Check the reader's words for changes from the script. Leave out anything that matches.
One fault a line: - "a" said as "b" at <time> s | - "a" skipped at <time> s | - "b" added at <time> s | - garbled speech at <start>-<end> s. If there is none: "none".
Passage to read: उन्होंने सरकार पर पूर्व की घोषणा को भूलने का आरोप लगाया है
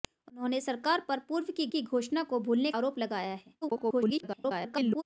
- "की" added at 1.7 s
- "का" skipped at 2.7 s
- garbled speech at 3.6-5.0 s